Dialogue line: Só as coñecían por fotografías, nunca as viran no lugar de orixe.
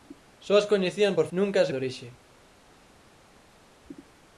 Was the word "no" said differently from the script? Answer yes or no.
yes